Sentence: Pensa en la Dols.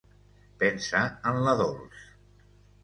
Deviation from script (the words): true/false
false